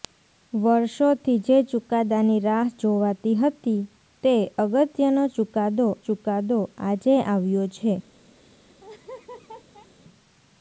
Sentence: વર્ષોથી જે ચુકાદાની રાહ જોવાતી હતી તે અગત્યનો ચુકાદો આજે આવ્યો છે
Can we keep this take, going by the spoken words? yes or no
no